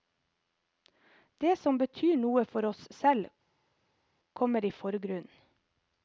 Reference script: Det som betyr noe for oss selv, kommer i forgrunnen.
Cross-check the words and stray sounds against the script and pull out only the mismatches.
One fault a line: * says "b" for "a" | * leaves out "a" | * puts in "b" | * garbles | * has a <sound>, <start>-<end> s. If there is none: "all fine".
all fine